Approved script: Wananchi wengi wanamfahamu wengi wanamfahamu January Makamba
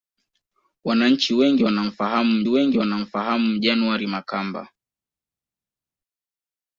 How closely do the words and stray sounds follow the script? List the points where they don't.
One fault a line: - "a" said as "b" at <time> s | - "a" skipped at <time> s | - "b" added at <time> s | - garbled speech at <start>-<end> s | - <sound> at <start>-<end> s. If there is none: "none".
none